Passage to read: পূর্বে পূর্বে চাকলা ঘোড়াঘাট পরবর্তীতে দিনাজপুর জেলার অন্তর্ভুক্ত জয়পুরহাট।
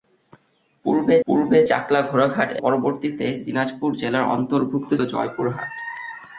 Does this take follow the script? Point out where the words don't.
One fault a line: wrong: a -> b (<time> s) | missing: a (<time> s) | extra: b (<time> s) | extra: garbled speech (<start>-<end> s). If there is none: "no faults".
no faults